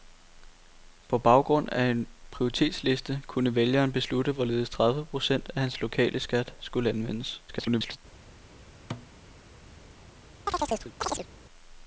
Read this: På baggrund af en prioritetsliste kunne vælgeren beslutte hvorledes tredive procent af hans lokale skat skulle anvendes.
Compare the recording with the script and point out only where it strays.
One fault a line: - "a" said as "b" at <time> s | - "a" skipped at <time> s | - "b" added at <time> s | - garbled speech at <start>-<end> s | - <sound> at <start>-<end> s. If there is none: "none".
- garbled speech at 7.5-8.0 s
- thud at 8.9-9.1 s
- chirp at 10.5-11.3 s